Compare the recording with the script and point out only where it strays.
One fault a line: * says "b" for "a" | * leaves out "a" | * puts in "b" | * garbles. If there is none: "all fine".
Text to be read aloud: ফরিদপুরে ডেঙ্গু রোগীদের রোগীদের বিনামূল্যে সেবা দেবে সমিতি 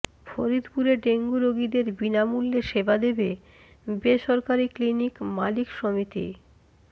* leaves out "রোগীদের"
* puts in "বেসরকারি ক্লিনিক মালিক"